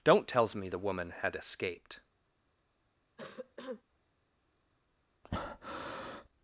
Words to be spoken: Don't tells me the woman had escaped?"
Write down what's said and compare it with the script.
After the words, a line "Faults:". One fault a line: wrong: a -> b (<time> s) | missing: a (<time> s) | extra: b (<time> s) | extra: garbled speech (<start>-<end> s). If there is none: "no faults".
Don't tells me the woman had escaped?"
Faults:
no faults